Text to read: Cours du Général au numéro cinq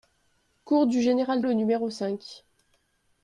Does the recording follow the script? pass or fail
pass